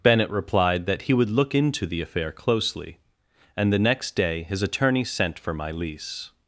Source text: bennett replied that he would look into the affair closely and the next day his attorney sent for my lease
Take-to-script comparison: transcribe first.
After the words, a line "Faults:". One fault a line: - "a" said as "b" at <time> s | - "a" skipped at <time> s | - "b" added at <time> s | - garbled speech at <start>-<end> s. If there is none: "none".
bennett replied that he would look into the affair closely and the next day his attorney sent for my lease
Faults:
none